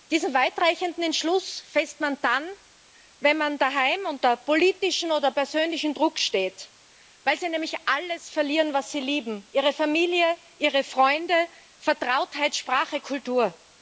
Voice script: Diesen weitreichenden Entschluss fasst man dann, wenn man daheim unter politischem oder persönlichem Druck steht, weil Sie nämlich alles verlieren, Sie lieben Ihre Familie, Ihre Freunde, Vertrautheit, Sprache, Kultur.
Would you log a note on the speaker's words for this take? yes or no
yes